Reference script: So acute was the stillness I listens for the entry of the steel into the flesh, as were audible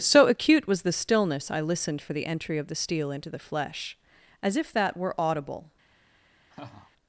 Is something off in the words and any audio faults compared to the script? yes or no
yes